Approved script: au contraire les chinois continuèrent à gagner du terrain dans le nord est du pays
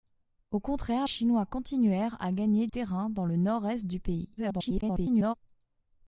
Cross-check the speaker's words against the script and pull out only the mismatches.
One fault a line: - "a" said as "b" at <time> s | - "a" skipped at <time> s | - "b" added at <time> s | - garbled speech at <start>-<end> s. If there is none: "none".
- "les" skipped at 1.1 s
- "du" skipped at 2.7 s
- garbled speech at 4.4-5.3 s